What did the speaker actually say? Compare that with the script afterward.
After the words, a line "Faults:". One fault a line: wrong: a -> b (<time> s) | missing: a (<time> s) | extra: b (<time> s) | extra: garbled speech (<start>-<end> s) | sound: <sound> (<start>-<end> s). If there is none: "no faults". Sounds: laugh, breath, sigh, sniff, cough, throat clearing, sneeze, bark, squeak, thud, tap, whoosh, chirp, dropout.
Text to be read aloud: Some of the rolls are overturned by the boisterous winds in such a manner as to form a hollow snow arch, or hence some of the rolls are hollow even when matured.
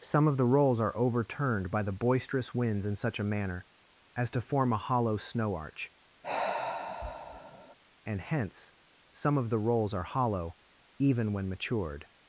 Some of the rolls are overturned by the boisterous winds in such a manner as to form a hollow snow arch, and hence some of the rolls are hollow even when matured.
Faults:
sound: sigh (6.2-7.8 s)
wrong: or -> and (8.0 s)